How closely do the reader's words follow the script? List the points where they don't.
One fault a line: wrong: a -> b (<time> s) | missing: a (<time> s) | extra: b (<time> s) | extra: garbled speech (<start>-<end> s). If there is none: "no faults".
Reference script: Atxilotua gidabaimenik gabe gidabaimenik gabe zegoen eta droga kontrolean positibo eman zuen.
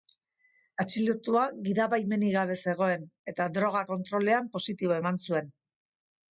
missing: gidabaimenik gabe (2.6 s)